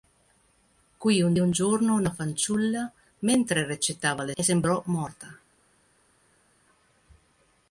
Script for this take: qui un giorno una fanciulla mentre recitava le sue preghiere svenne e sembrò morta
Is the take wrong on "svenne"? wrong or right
wrong